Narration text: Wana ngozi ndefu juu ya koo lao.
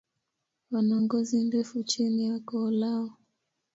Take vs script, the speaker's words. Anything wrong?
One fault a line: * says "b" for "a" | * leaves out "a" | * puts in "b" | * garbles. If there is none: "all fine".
* says "chini" for "juu"